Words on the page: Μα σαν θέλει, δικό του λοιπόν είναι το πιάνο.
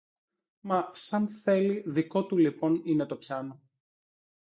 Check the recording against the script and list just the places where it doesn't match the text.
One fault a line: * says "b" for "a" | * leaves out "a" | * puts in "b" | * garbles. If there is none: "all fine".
all fine